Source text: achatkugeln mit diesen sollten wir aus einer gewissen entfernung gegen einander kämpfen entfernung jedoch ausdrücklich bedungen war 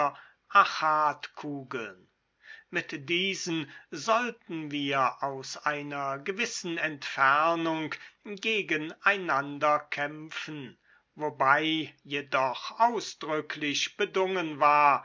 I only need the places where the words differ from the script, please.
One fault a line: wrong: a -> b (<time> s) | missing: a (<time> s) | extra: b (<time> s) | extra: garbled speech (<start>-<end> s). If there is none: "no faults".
wrong: entfernung -> wobei (11.2 s)